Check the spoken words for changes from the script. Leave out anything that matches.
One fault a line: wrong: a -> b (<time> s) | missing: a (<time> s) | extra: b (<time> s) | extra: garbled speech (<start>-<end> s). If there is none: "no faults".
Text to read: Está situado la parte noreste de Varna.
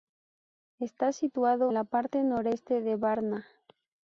no faults